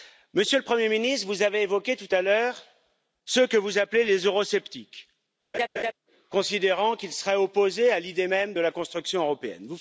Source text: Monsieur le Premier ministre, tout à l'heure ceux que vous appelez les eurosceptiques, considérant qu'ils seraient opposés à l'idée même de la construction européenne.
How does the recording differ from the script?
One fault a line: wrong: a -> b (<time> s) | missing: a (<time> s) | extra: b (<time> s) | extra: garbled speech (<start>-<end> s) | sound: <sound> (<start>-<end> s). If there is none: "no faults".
extra: vous avez évoqué (1.3 s)
sound: laugh (5.5-5.9 s)